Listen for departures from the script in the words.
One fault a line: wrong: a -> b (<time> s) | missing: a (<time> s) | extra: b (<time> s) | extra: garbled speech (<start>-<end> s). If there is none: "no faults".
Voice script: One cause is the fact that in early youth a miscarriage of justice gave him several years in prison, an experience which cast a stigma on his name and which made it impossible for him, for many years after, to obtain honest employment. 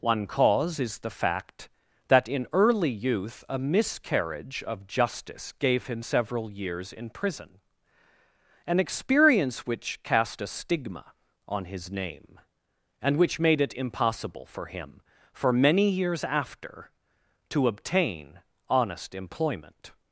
no faults